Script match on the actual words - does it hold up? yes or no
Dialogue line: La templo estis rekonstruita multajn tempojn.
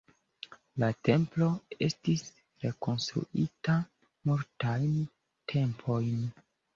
yes